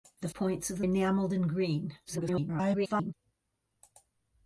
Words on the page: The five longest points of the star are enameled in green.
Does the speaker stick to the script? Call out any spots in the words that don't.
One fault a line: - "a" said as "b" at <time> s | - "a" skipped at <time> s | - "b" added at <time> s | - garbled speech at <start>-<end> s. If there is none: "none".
- "five longest" skipped at 0.3 s
- "star are" skipped at 0.8 s
- garbled speech at 2.0-3.1 s